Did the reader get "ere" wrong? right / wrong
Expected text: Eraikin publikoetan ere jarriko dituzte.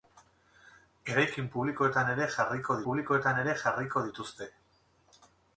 right